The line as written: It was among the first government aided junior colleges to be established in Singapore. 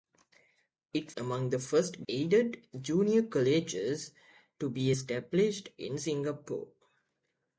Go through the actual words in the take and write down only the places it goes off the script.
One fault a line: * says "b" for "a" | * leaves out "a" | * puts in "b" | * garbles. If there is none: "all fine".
* leaves out "was"
* leaves out "government"